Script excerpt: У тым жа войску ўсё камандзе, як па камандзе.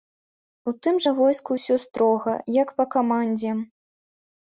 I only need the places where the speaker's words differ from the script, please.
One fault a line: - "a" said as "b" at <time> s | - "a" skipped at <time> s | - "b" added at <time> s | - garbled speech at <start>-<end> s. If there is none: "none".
- "камандзе" said as "строга" at 1.9 s